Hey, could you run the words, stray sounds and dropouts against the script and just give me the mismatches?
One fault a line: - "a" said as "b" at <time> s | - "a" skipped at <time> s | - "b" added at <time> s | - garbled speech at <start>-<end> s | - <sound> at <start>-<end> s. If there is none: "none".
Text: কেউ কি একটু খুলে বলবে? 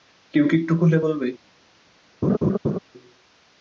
- laugh at 2.2-2.8 s